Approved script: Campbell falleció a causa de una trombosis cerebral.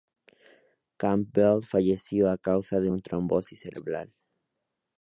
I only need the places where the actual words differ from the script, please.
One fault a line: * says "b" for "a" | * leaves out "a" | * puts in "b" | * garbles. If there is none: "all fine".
all fine